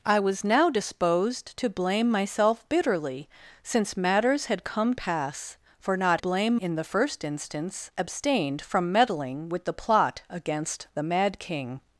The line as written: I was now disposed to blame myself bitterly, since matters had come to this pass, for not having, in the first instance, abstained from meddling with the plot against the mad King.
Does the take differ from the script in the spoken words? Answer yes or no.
yes